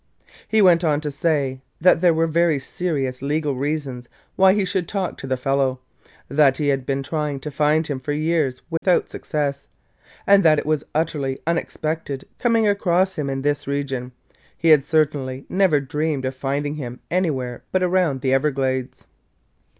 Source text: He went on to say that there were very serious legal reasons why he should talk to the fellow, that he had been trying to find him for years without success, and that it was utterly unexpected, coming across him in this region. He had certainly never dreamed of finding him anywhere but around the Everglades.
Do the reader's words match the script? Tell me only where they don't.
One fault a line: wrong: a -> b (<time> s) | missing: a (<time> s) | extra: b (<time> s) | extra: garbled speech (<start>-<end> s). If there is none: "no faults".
no faults